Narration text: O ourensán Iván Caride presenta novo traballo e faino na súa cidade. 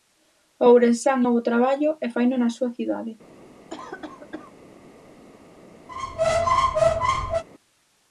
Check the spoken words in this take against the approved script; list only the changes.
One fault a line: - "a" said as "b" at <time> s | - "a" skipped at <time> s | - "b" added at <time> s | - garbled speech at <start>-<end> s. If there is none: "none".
- "Iván Caride presenta" skipped at 1.2 s